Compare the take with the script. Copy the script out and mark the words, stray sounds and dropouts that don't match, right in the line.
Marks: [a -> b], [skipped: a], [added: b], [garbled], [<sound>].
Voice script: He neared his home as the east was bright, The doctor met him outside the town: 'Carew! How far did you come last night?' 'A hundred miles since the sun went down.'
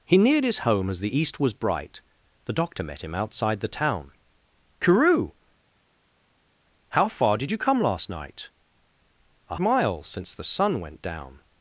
He neared his home as the east was bright, The doctor met him outside the town: 'Carew! How far did you come last night?' 'A [skipped: hundred] miles since the sun went down.'